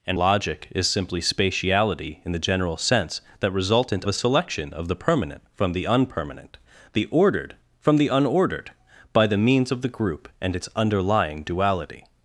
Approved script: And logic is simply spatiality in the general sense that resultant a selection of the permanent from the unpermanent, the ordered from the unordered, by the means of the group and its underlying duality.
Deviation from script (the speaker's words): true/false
false